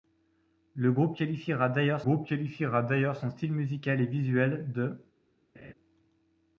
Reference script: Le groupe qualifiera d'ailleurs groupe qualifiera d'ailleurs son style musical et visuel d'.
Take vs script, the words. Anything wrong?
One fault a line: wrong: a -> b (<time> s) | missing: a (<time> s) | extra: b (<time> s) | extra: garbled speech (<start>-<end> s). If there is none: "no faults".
no faults